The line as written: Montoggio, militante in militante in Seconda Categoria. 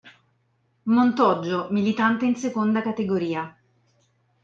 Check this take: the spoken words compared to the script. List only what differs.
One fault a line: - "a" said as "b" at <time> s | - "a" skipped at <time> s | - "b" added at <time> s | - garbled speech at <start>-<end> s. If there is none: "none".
- "militante in" skipped at 2.4 s